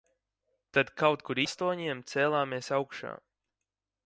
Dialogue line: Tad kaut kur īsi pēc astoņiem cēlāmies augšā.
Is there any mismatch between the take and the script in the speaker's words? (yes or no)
yes